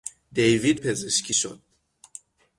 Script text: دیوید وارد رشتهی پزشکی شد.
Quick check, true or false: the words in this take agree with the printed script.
false